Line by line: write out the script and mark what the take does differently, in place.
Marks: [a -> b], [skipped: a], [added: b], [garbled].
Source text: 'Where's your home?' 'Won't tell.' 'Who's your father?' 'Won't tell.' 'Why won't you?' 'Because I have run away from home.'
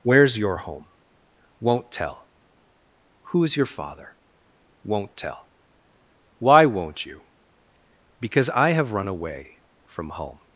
'Where's your home?' 'Won't tell.' 'Who's your father?' 'Won't tell.' 'Why won't you?' 'Because I have run away from home.'